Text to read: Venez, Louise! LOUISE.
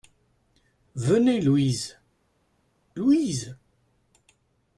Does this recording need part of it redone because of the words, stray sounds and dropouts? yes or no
no